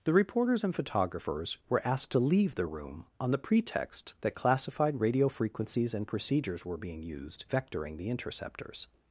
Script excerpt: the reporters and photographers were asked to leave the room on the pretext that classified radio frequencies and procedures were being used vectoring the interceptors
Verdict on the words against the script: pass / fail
pass